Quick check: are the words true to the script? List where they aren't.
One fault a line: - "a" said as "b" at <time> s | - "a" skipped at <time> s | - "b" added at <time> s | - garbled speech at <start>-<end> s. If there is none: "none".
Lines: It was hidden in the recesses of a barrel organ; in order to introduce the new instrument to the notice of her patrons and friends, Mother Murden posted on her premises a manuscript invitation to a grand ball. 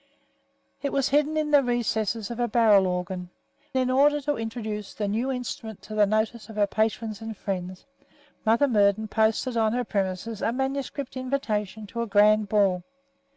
none